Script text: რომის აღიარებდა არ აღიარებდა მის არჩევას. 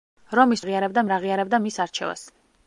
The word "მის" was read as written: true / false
true